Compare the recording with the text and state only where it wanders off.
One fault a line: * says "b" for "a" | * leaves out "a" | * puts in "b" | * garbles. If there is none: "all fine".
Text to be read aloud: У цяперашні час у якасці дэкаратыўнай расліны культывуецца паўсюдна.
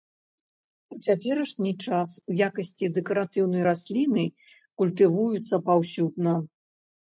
all fine